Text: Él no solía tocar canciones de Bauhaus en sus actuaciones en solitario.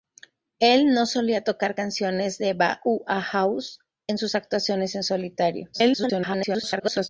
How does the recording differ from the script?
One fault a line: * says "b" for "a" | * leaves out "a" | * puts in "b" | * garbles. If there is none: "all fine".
* garbles